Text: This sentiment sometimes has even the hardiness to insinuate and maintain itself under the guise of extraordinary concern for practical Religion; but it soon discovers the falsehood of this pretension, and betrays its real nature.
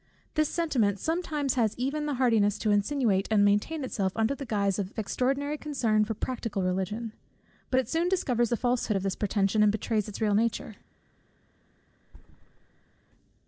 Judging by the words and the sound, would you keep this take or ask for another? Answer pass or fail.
fail